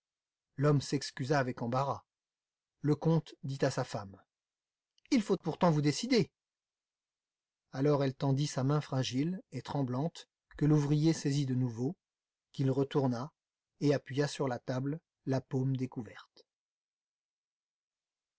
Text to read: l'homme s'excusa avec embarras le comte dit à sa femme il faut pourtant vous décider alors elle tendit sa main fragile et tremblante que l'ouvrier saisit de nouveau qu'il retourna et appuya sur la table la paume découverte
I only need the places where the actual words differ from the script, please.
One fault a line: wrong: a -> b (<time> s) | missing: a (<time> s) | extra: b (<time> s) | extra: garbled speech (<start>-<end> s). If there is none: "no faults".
no faults